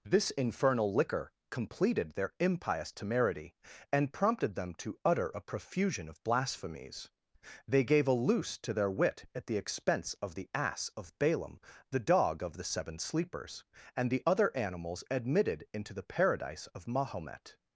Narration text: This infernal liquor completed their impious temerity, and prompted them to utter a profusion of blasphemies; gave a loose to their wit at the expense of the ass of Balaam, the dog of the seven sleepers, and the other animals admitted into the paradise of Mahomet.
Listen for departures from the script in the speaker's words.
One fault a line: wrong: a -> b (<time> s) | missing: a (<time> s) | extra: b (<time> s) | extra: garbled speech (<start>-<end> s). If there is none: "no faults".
extra: they (7.7 s)